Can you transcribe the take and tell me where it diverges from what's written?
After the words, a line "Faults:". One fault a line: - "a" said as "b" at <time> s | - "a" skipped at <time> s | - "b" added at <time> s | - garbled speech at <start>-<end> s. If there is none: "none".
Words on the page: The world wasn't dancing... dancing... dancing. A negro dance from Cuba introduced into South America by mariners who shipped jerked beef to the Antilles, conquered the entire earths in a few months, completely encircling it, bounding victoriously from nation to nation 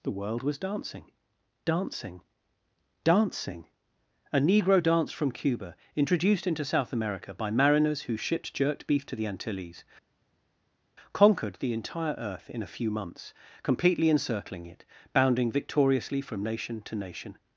The world was dancing... dancing... dancing. A negro dance from Cuba introduced into South America by mariners who shipped jerked beef to the Antilles, conquered the entire earth in a few months, completely encircling it, bounding victoriously from nation to nation
Faults:
- "wasn't" said as "was" at 0.4 s
- "earths" said as "earth" at 12.2 s